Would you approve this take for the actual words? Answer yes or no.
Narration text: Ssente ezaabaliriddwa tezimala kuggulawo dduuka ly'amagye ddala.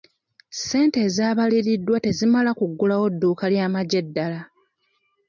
yes